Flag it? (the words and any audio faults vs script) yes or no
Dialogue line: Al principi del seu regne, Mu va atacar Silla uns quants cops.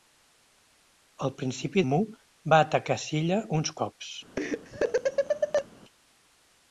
yes